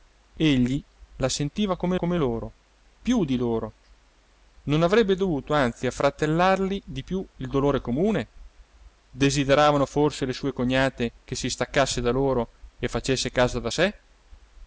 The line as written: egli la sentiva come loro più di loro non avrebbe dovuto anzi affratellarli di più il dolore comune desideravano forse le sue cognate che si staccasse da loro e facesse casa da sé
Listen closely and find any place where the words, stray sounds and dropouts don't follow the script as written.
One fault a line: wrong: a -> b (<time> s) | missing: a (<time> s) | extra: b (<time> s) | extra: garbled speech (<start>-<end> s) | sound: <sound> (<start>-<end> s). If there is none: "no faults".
extra: come (2.0 s)